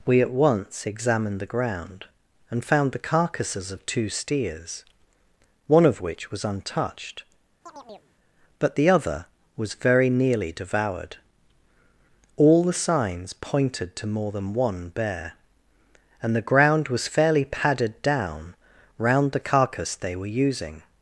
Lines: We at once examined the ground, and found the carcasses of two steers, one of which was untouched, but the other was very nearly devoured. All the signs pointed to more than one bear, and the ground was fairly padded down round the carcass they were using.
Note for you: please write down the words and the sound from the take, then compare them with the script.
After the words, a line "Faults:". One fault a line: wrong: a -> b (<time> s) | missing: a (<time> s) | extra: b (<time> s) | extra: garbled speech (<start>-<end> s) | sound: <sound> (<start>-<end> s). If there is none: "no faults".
We at once examined the ground, and found the carcasses of two steers, one of which was untouched, but the other was very nearly devoured. All the signs pointed to more than one bear, and the ground was fairly padded down round the carcass they were using.
Faults:
sound: chirp (7.7-8.1 s)